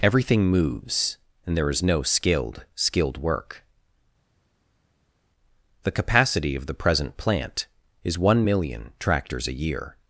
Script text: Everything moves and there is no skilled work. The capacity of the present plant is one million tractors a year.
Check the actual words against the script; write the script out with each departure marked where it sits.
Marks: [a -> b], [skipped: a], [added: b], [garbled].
Everything moves and there is no skilled [added: skilled] work. The capacity of the present plant is one million tractors a year.